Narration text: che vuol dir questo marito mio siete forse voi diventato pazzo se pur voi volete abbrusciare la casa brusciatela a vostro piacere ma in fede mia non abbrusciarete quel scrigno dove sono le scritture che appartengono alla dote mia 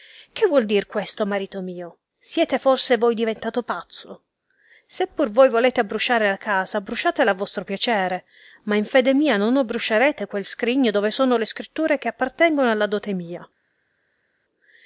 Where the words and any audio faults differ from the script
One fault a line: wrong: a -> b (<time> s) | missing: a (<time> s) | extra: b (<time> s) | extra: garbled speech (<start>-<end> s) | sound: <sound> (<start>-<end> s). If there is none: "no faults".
no faults